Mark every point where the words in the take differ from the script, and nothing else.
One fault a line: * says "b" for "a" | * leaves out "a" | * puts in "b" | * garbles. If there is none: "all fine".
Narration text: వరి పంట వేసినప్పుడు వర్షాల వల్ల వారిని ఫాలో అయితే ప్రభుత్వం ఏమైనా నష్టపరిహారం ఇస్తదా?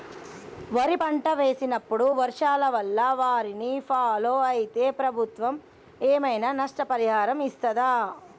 all fine